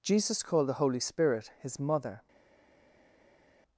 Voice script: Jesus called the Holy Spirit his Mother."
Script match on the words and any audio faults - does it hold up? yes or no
yes